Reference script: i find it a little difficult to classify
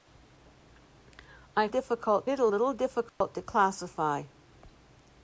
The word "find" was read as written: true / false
false